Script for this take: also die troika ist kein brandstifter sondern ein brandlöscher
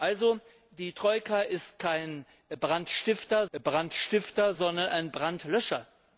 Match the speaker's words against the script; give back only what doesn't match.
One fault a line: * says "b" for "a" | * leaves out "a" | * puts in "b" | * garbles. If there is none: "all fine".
* puts in "brandstifter"